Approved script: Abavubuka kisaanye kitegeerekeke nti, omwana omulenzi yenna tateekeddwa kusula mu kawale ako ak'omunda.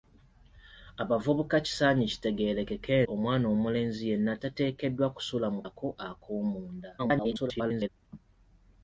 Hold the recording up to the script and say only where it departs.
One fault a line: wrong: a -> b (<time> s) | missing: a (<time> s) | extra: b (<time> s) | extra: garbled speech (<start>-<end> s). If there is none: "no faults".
missing: nti (3.0 s)
missing: kawale (5.6 s)
extra: garbled speech (7.0-7.9 s)